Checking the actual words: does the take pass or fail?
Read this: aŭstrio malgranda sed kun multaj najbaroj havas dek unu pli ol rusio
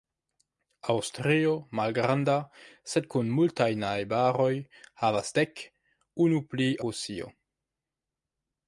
fail